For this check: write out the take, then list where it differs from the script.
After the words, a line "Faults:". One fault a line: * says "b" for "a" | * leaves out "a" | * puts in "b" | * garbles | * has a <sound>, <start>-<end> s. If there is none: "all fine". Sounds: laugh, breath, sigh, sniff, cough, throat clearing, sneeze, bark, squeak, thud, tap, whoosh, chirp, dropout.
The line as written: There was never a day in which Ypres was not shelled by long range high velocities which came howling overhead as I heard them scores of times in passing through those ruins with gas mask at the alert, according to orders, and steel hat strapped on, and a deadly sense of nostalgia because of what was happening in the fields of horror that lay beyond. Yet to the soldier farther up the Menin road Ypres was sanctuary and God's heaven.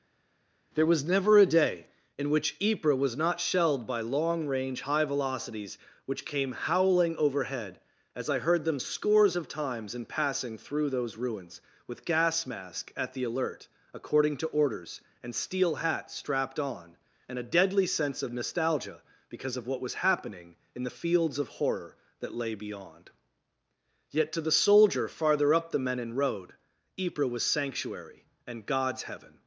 There was never a day in which Ypres was not shelled by long range high velocities which came howling overhead as I heard them scores of times in passing through those ruins with gas mask at the alert, according to orders, and steel hat strapped on, and a deadly sense of nostalgia because of what was happening in the fields of horror that lay beyond. Yet to the soldier farther up the Menin road Ypres was sanctuary and God's heaven.
Faults:
all fine